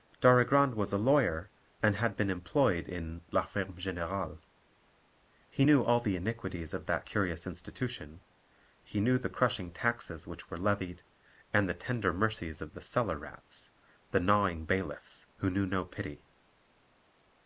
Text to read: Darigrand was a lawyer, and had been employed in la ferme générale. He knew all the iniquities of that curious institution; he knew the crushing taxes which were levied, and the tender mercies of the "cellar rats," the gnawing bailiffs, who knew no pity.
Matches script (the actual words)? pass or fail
pass